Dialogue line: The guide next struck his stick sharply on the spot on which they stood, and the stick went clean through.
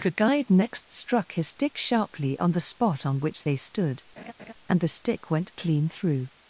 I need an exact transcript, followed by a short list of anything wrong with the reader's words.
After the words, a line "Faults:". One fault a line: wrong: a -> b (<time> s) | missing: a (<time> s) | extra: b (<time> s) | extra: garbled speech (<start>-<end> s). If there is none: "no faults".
The guide next struck his stick sharply on the spot on which they stood, and the stick went clean through.
Faults:
no faults